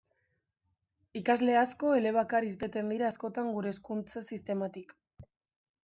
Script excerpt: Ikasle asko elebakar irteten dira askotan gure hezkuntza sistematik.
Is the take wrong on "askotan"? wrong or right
right